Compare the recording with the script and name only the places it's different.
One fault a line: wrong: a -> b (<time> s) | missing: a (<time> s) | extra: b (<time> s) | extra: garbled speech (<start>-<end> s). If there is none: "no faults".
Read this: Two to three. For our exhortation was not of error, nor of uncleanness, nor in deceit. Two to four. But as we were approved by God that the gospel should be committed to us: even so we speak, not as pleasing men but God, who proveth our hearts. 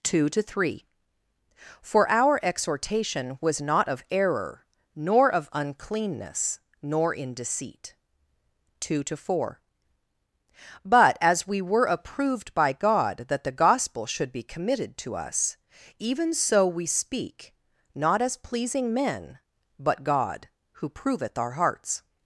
no faults